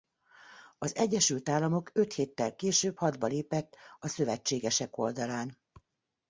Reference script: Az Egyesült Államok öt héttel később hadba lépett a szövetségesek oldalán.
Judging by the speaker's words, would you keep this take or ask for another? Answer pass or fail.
pass